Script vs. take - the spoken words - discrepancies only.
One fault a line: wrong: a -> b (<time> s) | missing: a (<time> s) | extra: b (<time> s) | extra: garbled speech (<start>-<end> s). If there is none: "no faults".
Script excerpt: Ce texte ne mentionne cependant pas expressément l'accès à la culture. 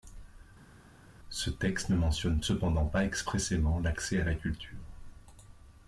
no faults